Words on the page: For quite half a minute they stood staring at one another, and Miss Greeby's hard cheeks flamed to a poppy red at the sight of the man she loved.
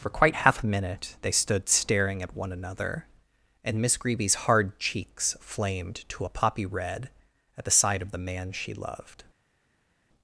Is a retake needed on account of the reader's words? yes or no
no